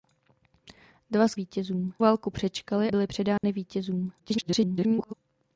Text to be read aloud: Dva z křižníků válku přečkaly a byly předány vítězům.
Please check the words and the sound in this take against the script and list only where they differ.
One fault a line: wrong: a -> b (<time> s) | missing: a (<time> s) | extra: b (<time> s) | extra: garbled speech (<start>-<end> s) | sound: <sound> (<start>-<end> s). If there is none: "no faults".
wrong: křižníků -> vítězům (1.3 s)
missing: a (2.9 s)
sound: dropout (3.4-3.4 s)
extra: garbled speech (4.2-5.1 s)